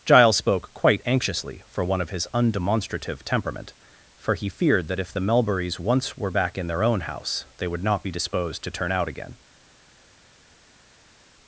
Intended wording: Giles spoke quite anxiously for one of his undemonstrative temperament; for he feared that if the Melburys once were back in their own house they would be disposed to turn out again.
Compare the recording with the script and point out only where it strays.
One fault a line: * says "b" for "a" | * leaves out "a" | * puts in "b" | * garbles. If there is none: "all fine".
* puts in "not"